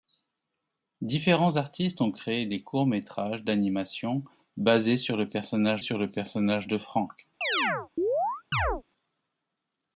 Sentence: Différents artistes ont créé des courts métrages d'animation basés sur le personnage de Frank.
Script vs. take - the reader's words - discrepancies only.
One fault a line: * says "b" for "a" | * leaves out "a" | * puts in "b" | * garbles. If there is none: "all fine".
* puts in "sur le personnage"